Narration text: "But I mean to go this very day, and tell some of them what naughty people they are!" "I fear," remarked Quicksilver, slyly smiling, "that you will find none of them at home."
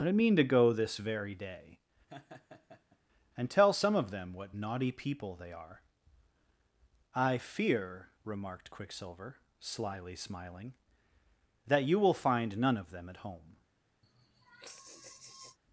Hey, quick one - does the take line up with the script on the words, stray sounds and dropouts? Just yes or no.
no